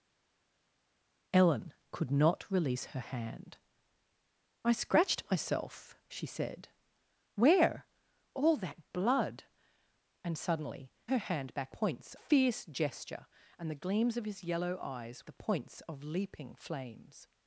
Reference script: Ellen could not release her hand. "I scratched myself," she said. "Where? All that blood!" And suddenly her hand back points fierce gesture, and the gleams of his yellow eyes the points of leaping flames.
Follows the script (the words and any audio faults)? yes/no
yes